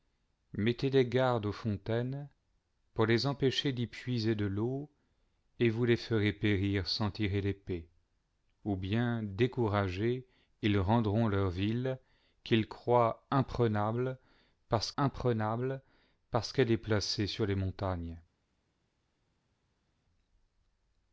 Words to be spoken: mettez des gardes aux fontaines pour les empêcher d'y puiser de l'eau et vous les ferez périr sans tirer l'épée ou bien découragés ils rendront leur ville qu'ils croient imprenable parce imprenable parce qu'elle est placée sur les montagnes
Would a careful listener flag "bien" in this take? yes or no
no